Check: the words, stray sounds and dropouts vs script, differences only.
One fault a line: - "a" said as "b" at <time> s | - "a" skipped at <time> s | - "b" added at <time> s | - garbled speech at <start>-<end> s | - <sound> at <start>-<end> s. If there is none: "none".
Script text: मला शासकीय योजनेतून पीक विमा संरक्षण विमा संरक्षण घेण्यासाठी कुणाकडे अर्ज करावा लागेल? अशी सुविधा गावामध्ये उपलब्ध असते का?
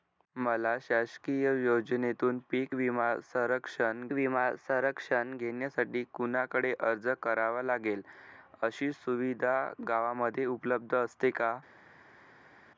none